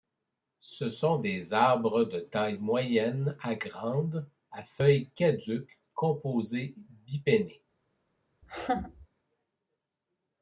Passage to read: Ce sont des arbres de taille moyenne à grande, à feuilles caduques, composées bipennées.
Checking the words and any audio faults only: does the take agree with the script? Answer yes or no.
no